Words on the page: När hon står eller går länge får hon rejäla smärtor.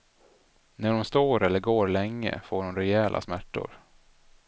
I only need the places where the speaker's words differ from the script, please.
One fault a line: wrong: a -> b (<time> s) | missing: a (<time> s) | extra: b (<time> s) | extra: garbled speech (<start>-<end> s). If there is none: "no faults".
no faults